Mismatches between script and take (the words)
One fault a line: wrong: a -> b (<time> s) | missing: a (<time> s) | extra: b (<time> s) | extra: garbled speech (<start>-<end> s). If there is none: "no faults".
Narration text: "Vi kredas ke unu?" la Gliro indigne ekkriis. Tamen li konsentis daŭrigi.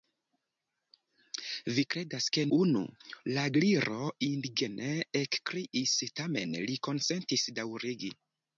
no faults